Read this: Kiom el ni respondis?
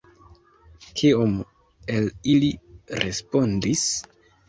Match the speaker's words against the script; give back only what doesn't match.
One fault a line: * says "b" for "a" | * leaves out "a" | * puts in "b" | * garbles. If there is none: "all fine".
* says "ili" for "ni"